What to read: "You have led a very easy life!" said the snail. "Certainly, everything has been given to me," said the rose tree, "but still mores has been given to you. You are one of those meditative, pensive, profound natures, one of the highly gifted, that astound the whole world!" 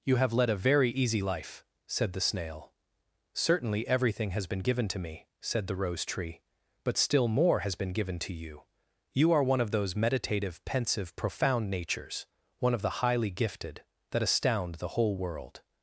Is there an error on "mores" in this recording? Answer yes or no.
yes